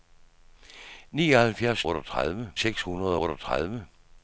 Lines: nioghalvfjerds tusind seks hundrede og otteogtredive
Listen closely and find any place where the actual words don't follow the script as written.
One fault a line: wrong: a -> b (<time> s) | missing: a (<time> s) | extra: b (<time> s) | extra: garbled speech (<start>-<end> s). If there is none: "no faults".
wrong: tusind -> otteogtredive (1.9 s)
missing: og (3.2 s)